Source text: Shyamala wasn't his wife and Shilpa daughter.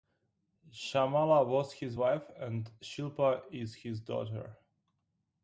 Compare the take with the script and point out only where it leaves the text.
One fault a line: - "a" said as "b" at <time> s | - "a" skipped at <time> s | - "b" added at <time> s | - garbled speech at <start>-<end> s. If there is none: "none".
- "wasn't" said as "was" at 1.4 s
- "is his" added at 3.5 s